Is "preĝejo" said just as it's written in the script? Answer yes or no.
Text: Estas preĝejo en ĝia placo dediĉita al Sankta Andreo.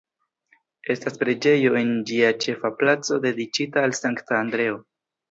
yes